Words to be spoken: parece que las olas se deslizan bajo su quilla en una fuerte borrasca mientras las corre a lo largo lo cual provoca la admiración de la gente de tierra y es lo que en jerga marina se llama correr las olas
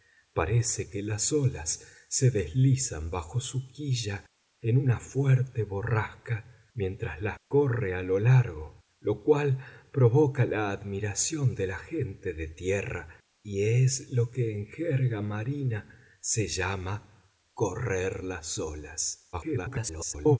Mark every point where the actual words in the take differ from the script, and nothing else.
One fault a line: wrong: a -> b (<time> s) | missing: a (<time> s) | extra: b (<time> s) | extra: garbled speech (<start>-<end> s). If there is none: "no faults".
extra: garbled speech (19.3-20.4 s)